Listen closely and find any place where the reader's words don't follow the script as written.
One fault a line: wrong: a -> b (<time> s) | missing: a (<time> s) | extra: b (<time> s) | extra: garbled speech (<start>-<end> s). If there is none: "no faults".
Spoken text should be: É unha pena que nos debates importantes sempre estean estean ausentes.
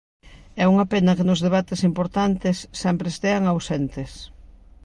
missing: estean (3.4 s)